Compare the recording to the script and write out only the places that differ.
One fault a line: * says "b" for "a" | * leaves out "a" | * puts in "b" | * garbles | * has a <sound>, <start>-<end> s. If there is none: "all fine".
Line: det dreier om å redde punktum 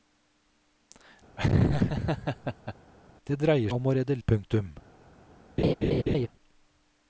* has a laugh, 1.4-2.7 s
* has a laugh, 5.6-6.3 s